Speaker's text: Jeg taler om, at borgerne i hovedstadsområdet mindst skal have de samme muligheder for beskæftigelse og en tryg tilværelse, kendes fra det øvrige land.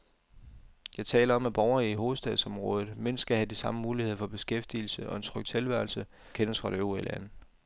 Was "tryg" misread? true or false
false